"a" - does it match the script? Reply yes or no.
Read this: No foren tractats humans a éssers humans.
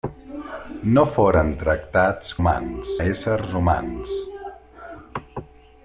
yes